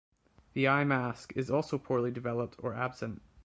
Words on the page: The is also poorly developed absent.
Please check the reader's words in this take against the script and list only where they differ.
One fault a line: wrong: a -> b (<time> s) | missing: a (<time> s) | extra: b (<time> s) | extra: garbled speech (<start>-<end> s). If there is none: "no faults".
extra: eye mask (0.7 s)
extra: or (2.6 s)